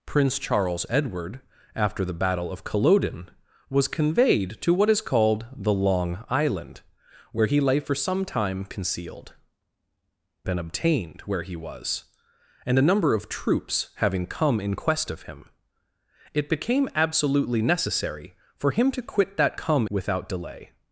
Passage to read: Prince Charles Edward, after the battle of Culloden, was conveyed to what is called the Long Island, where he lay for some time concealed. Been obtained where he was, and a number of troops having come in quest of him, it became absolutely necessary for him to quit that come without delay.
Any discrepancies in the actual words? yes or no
no